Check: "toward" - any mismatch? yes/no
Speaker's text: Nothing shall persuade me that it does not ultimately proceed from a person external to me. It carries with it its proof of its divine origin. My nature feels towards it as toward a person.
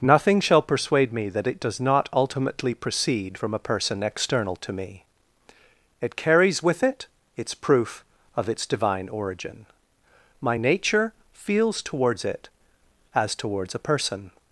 yes